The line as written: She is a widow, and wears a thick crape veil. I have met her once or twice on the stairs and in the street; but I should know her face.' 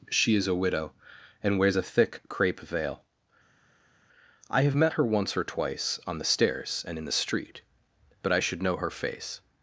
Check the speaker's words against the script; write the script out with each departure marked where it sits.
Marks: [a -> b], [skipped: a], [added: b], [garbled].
She is a widow, and wears a thick crape veil. I have met her once or twice on the stairs and in the street; but I should know her face.'